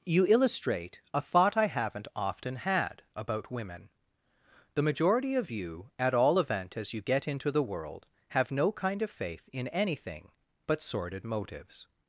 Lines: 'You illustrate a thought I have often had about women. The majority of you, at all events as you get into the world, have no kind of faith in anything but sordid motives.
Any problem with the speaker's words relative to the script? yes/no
yes